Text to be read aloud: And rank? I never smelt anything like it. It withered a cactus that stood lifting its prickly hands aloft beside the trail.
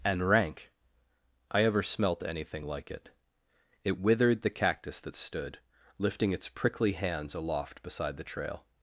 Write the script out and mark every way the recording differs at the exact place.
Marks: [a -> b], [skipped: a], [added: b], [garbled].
And rank? I [never -> ever] smelt anything like it. It withered [a -> the] cactus that stood lifting its prickly hands aloft beside the trail.